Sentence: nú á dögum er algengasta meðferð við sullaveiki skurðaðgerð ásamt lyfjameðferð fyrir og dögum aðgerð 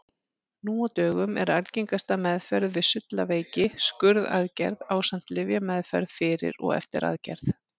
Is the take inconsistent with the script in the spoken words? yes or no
yes